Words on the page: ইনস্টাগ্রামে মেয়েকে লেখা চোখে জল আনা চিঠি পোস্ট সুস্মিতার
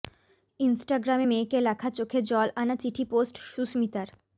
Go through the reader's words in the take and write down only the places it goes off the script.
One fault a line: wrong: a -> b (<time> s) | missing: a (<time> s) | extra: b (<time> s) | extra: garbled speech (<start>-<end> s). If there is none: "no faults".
no faults